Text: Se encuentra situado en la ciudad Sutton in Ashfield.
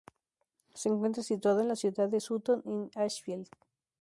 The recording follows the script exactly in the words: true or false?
false